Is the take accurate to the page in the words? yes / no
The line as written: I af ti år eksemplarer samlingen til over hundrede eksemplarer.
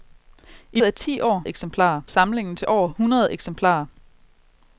yes